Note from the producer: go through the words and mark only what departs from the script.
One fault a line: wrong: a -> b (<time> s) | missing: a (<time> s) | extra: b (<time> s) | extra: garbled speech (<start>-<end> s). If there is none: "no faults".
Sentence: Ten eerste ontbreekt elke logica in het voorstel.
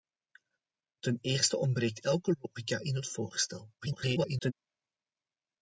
extra: garbled speech (3.8-4.5 s)